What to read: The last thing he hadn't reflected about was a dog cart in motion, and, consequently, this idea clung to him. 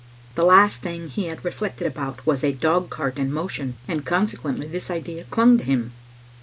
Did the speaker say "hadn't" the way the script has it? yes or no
no